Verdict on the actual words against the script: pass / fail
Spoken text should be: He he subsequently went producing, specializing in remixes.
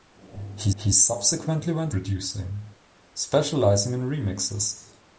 pass